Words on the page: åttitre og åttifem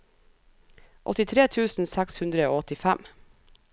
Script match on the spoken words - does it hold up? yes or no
no